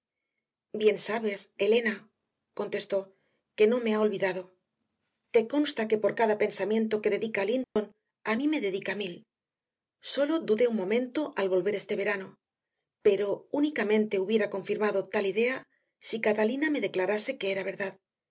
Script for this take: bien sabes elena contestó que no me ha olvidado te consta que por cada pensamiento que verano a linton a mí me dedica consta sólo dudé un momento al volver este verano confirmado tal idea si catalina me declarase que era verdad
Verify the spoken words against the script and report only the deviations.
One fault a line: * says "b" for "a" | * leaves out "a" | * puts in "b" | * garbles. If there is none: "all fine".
* says "dedica" for "verano"
* says "mil" for "consta"
* puts in "pero únicamente hubiera"